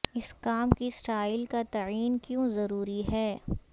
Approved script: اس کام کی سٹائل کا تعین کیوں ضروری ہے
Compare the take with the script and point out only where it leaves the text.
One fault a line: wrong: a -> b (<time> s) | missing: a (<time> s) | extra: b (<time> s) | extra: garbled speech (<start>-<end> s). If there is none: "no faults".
no faults